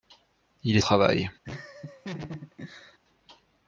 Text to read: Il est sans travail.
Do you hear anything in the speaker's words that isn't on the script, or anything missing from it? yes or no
yes